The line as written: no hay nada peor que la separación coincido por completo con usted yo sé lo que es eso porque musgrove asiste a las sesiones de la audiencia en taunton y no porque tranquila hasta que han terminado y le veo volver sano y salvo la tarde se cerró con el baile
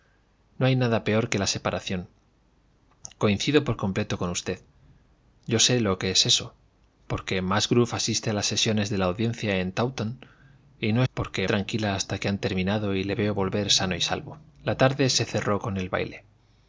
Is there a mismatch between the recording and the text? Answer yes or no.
no